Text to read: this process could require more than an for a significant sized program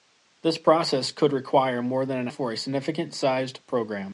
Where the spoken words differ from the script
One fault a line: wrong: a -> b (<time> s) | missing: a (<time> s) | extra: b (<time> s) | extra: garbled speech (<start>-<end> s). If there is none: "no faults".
no faults